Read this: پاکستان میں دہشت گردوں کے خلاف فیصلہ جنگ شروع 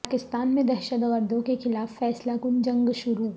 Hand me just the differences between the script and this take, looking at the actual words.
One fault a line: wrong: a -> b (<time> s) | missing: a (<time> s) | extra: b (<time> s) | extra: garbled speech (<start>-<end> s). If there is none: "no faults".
extra: کن (2.4 s)